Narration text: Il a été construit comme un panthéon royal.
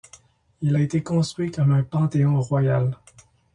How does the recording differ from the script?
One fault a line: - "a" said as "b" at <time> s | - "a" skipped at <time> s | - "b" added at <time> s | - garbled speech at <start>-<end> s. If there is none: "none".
none